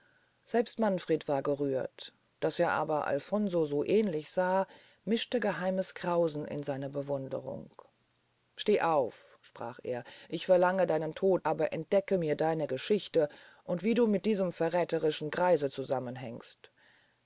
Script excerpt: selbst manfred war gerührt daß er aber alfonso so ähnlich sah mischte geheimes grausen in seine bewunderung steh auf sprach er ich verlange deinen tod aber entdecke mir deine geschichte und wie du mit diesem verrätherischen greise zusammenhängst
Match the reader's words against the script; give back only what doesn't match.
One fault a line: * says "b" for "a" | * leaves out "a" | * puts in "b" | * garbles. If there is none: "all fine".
all fine